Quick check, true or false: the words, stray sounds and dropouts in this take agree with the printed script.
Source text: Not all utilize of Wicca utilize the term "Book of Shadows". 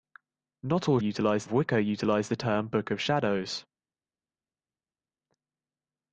true